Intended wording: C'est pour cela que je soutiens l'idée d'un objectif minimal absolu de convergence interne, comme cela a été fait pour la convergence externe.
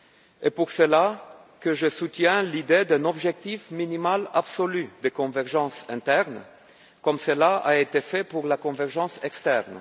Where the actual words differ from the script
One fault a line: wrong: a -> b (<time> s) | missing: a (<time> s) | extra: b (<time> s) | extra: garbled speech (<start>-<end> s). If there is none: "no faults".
no faults